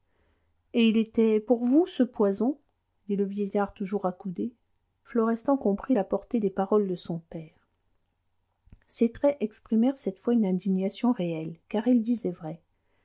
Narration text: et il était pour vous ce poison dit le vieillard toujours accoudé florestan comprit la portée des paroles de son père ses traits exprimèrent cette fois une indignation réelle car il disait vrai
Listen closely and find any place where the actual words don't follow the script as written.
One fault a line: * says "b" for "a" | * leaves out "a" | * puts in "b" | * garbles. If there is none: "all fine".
all fine